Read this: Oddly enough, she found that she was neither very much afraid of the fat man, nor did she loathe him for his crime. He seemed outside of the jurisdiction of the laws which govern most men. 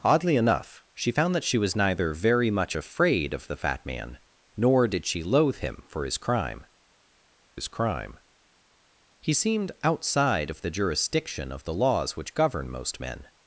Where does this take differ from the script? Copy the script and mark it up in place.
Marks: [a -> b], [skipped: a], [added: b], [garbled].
Oddly enough, she found that she was neither very much afraid of the fat man, nor did she loathe him for his crime. [added: his crime] He seemed outside of the jurisdiction of the laws which govern most men.